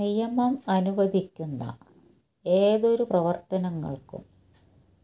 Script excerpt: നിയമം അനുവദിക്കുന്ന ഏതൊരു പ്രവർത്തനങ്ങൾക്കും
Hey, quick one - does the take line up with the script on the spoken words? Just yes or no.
yes